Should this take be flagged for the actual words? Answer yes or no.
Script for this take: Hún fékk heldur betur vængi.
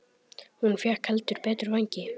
no